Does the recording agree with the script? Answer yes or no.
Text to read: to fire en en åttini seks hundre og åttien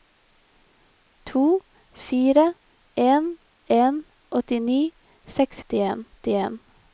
no